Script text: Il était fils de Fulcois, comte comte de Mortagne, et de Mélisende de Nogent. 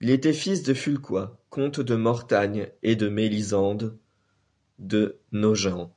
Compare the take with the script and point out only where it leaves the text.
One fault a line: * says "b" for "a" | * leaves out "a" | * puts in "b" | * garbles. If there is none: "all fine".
* leaves out "comte"